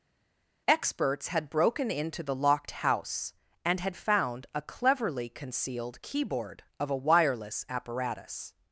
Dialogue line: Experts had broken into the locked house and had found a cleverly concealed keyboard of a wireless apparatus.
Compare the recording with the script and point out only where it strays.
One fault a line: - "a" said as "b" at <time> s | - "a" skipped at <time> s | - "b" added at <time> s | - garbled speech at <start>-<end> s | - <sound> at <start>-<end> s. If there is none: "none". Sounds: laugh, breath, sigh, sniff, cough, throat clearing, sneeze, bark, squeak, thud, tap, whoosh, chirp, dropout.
none